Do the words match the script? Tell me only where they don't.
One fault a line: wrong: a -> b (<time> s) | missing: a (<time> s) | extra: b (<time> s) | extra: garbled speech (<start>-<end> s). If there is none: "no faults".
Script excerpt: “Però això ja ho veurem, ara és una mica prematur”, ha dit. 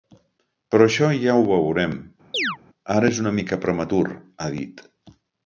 no faults